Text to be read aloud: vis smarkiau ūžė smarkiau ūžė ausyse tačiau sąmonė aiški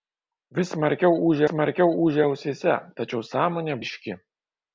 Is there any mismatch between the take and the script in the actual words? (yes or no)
no